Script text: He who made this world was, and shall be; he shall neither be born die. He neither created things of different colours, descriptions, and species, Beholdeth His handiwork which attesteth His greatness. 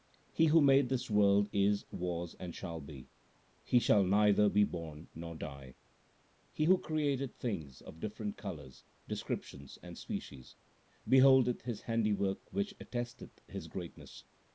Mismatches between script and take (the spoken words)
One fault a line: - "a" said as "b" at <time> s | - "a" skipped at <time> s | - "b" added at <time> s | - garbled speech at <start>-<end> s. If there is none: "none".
- "is" added at 1.5 s
- "nor" added at 5.1 s
- "neither" said as "who" at 6.7 s